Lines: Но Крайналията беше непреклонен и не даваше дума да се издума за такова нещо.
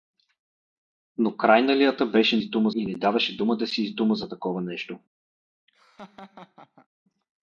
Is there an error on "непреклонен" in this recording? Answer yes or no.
yes